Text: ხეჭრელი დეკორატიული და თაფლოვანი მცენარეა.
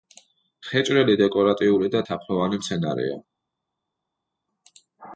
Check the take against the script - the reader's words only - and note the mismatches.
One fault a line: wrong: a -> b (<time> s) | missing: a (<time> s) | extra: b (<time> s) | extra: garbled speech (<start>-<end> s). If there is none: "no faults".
no faults